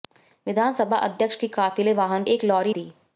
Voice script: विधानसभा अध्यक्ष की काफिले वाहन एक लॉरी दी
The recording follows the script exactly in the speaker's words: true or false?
true